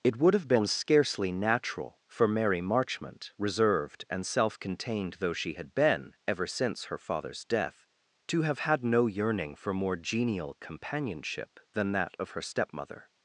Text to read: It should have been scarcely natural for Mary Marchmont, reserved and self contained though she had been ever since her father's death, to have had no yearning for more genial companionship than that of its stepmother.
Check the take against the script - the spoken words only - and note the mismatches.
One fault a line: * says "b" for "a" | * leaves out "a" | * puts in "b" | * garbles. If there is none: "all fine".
* says "would" for "should"
* says "her" for "its"